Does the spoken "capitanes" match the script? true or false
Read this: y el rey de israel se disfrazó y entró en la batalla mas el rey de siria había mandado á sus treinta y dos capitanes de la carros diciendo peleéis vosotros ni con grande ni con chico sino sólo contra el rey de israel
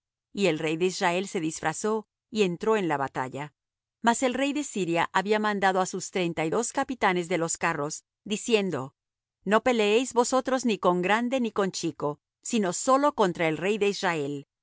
true